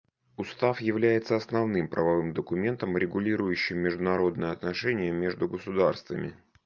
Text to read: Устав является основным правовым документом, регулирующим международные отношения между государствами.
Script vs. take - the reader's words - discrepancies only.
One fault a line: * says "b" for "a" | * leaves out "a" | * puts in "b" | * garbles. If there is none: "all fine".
all fine